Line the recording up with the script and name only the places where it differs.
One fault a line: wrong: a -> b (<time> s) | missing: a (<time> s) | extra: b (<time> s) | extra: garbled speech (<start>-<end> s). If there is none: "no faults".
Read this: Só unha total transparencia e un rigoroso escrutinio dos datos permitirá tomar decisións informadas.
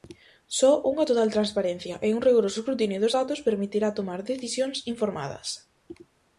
no faults